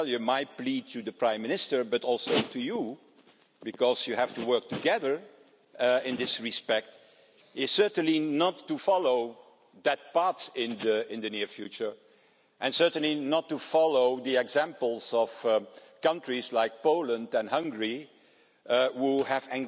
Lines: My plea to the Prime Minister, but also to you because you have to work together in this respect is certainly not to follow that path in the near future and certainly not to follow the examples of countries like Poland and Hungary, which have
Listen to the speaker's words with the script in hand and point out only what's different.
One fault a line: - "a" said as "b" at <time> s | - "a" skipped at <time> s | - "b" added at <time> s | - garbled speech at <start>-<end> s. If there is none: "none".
none